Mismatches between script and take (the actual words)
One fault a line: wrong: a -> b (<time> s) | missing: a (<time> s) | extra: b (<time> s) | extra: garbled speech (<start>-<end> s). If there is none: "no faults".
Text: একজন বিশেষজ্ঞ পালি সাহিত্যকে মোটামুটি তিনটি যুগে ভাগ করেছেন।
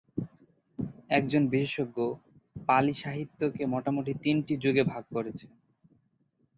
no faults